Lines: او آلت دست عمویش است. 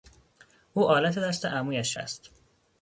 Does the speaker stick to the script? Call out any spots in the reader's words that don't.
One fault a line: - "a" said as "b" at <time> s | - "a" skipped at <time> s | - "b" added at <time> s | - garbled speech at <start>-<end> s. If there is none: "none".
none